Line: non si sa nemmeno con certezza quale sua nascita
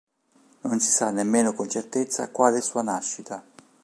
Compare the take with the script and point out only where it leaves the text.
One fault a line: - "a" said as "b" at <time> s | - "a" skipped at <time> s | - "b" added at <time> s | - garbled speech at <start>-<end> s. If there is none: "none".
none